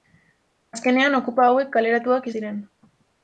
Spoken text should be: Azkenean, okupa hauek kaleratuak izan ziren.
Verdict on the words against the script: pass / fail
fail